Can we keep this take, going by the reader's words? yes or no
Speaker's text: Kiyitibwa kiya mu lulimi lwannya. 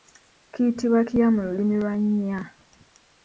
yes